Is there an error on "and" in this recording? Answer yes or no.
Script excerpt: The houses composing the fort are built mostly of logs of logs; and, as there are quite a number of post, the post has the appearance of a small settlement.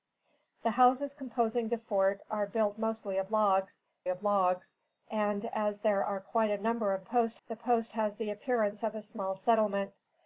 no